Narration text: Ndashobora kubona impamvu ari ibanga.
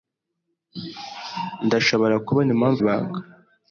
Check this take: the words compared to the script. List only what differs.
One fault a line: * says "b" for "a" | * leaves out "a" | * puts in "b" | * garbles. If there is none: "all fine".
* leaves out "ari"